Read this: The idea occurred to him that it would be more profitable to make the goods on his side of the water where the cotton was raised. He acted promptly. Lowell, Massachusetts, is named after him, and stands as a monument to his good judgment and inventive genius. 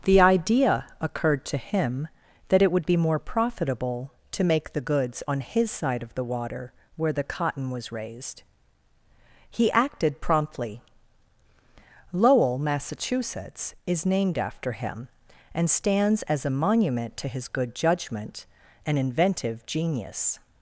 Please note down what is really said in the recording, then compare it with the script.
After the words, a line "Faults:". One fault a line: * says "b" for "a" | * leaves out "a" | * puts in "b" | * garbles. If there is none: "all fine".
The idea occurred to him that it would be more profitable to make the goods on his side of the water where the cotton was raised. He acted promptly. Lowell, Massachusetts, is named after him, and stands as a monument to his good judgment and inventive genius.
Faults:
all fine